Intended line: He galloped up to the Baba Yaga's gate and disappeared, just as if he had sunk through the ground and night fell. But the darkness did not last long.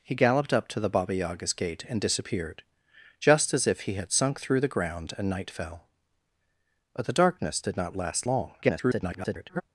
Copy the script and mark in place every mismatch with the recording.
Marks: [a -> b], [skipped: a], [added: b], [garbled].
He galloped up to the Baba Yaga's gate and disappeared, just as if he had sunk through the ground and night fell. But the darkness did not last long. [garbled]